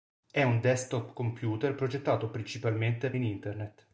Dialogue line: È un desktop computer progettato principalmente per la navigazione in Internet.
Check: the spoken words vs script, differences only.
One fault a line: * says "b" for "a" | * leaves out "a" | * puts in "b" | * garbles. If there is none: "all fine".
* leaves out "per la navigazione"